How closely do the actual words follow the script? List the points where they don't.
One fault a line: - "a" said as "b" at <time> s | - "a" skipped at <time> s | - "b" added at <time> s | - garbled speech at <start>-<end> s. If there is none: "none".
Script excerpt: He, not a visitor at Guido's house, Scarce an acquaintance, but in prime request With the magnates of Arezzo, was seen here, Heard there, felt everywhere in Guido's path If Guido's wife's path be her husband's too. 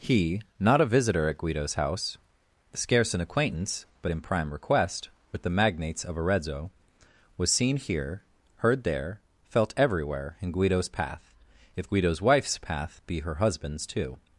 none